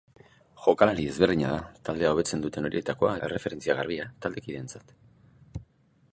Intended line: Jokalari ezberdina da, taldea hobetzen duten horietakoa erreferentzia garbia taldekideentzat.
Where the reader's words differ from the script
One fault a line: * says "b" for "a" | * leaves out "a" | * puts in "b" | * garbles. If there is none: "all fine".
all fine